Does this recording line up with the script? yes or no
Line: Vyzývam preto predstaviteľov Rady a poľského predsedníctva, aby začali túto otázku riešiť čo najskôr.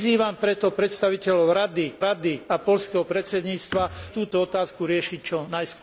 no